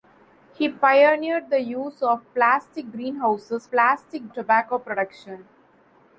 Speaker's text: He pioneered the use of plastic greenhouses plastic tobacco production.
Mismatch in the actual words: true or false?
false